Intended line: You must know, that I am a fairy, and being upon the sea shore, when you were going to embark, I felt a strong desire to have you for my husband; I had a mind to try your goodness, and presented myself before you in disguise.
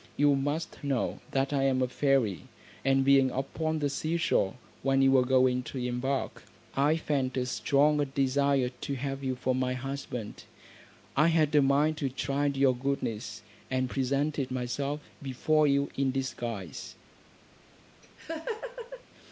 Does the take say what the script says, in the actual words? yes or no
yes